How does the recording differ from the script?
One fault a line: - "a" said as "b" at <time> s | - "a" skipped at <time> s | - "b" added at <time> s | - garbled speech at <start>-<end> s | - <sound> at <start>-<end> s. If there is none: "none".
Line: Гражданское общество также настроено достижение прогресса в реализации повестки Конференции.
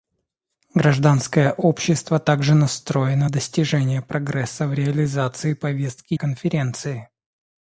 none